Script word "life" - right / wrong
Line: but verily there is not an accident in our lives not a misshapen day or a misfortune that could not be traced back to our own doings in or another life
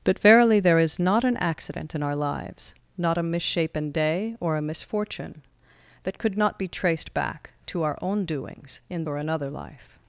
right